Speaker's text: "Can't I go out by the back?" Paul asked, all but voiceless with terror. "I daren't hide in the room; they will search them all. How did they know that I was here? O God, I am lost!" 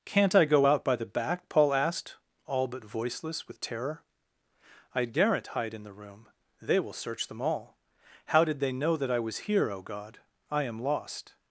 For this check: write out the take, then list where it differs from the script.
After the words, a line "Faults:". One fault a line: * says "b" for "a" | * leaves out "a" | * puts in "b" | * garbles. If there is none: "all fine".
"Can't I go out by the back?" Paul asked, all but voiceless with terror. "I daren't hide in the room; they will search them all. How did they know that I was here? O God, I am lost!"
Faults:
all fine